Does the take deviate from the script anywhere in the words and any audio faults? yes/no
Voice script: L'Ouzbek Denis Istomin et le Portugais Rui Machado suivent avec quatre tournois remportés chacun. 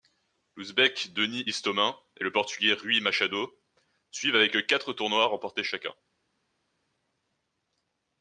no